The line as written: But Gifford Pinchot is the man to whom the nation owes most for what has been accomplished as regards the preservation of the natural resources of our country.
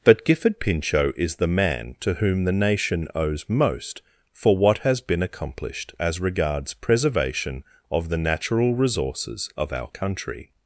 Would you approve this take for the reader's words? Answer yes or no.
no